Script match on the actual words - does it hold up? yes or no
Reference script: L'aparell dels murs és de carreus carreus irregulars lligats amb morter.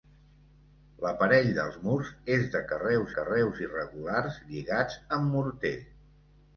yes